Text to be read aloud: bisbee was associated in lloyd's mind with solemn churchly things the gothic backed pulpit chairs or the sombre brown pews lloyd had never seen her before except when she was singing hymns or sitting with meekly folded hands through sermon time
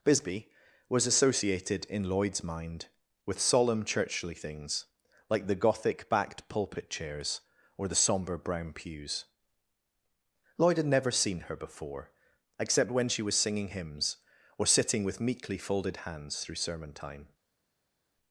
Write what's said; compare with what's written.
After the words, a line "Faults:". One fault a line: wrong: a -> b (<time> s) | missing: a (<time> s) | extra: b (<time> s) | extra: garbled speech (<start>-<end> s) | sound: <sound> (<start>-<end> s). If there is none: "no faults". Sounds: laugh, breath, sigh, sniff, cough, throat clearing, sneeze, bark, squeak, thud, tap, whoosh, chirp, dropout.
bisbee was associated in lloyd's mind with solemn churchly things like the gothic backed pulpit chairs or the sombre brown pews lloyd had never seen her before except when she was singing hymns or sitting with meekly folded hands through sermon time
Faults:
extra: like (5.3 s)